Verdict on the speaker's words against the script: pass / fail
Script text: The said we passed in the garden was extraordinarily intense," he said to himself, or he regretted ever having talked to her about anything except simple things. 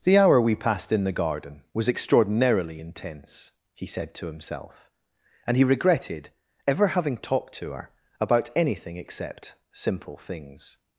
fail